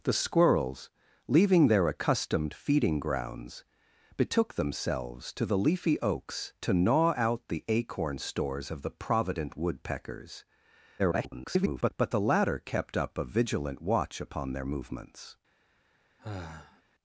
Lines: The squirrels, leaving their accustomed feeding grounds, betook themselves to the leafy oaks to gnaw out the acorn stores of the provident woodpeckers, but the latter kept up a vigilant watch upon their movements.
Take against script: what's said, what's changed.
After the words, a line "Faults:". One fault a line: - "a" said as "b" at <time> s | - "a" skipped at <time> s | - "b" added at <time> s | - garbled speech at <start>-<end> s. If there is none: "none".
The squirrels, leaving their accustomed feeding grounds, betook themselves to the leafy oaks to gnaw out the acorn stores of the provident woodpeckers, [garbled] but the latter kept up a vigilant watch upon their movements.
Faults:
- garbled speech at 11.0-11.9 s